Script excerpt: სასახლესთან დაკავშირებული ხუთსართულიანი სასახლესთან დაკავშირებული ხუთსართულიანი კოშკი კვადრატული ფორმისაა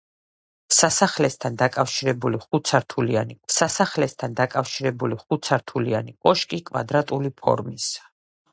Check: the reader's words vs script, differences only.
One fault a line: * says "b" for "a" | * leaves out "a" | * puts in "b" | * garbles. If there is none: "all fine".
all fine